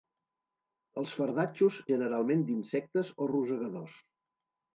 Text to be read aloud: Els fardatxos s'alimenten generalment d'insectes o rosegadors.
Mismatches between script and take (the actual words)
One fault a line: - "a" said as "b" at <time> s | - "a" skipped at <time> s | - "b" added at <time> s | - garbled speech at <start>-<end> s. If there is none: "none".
- "s'alimenten" skipped at 1.8 s